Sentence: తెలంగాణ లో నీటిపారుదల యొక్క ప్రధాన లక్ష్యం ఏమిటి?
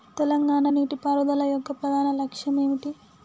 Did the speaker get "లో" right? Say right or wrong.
wrong